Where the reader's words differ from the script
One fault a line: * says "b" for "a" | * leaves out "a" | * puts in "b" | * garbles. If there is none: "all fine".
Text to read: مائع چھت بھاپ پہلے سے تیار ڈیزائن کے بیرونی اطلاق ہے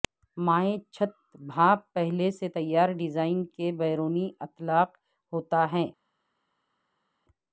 * puts in "ہوتا"